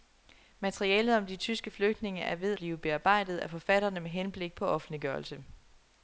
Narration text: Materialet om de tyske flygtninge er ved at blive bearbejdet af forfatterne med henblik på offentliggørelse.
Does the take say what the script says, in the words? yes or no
no